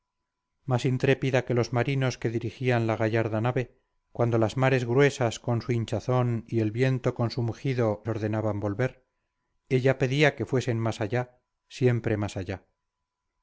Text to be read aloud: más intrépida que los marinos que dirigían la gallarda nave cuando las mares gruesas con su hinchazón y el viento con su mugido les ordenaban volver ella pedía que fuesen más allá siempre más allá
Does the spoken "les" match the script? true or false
false